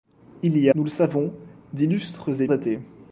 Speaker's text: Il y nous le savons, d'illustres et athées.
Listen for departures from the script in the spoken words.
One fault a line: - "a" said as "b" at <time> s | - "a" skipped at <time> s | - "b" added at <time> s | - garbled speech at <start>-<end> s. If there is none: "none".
none